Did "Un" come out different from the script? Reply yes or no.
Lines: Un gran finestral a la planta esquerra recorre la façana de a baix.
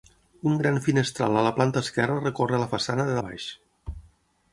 no